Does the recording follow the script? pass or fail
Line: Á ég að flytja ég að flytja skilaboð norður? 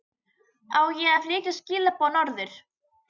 fail